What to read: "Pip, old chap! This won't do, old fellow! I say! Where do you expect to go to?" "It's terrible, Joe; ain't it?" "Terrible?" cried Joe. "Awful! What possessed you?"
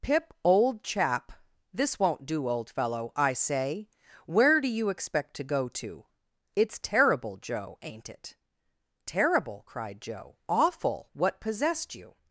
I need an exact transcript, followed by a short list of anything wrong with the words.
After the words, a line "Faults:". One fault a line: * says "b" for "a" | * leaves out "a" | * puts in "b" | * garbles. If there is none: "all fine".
"Pip, old chap! This won't do, old fellow! I say! Where do you expect to go to?" "It's terrible, Joe; ain't it?" "Terrible?" cried Joe. "Awful! What possessed you?"
Faults:
all fine